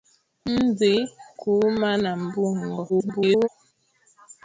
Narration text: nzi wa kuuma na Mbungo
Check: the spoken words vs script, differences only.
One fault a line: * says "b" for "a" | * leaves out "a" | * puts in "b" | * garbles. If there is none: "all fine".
* leaves out "wa"
* garbles